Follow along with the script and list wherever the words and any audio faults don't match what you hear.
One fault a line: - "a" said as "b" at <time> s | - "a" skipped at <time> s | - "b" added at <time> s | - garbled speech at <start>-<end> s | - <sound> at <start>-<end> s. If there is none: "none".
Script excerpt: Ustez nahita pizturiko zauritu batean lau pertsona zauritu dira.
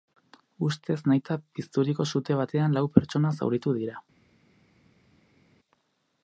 - "zauritu" said as "sute" at 2.1 s